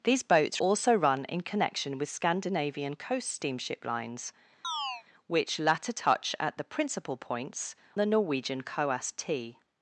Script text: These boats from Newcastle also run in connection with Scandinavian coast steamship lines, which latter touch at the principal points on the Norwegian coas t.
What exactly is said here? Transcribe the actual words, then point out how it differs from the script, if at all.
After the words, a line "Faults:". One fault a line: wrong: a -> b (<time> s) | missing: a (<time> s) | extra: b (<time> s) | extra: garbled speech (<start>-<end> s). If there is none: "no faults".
These boats also run in connection with Scandinavian coast steamship lines, which latter touch at the principal points the Norwegian coas t.
Faults:
missing: from Newcastle (0.6 s)
missing: on (7.7 s)